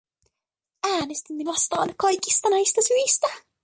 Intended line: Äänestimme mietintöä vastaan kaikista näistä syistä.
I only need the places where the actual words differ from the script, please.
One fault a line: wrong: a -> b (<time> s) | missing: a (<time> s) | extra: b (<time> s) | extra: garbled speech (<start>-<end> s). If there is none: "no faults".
missing: mietintöä (1.4 s)